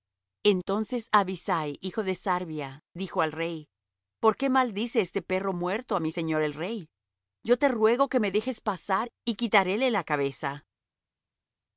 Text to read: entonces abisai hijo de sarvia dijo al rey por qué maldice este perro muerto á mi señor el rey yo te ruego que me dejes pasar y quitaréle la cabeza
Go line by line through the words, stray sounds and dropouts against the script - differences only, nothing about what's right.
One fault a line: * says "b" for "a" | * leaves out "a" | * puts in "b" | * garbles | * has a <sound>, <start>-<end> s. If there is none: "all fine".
all fine